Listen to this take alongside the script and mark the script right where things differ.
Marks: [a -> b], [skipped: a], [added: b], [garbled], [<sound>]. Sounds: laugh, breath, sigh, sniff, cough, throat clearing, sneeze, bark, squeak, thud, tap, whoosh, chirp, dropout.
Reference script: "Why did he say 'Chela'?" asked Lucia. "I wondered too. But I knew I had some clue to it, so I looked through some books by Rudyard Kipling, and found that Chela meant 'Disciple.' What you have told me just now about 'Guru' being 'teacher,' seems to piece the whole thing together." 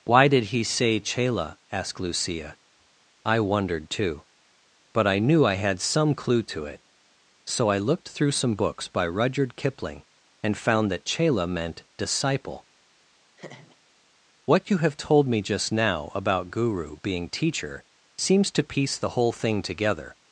"Why did he say 'Chela'?" asked Lucia. "I wondered too. But I knew I had some clue to it, so I looked through some books by Rudyard Kipling, and found that Chela meant 'Disciple.' [laugh] What you have told me just now about 'Guru' being 'teacher,' seems to piece the whole thing together."